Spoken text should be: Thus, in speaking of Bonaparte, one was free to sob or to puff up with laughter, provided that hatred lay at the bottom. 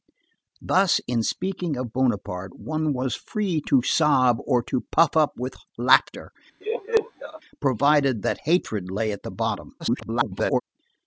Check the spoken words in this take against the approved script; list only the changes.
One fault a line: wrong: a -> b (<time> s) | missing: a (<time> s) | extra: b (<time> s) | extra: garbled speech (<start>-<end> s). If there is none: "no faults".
extra: garbled speech (9.8-10.6 s)